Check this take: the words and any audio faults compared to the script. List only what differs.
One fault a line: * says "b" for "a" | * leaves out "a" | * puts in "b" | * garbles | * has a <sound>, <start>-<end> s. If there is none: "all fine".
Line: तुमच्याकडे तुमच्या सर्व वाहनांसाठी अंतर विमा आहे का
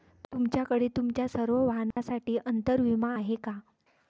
* has a dropout, 1.9-2.0 s